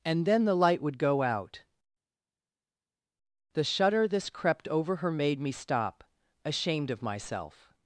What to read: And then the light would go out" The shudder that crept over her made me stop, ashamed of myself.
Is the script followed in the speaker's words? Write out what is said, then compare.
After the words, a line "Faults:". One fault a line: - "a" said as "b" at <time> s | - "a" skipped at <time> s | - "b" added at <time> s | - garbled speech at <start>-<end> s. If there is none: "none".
And then the light would go out" The shudder this crept over her made me stop, ashamed of myself.
Faults:
- "that" said as "this" at 4.1 s